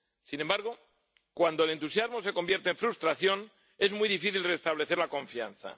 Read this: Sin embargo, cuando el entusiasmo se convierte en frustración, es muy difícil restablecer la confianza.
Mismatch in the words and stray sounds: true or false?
false